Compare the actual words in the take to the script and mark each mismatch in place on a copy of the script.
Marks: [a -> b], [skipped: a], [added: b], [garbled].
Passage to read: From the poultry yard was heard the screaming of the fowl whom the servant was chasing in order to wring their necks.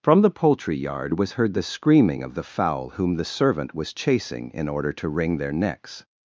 From the poultry yard was heard the screaming of the fowl whom the servant was chasing in order to wring their necks.